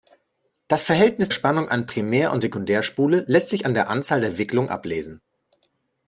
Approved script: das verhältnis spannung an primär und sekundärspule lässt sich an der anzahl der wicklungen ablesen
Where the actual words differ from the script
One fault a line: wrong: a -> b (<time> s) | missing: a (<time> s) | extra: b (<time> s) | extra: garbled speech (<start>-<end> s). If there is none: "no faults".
no faults